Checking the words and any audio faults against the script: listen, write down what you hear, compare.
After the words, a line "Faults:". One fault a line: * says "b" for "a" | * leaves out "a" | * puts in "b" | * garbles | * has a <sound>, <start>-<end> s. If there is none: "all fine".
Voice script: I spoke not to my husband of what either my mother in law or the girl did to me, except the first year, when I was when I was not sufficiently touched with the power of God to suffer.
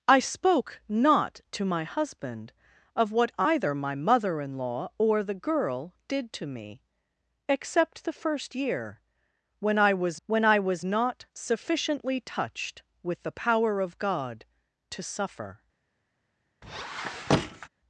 I spoke not to my husband of what either my mother in law or the girl did to me, except the first year, when I was when I was not sufficiently touched with the power of God to suffer.
Faults:
* has a squeak, 16.6-17.7 s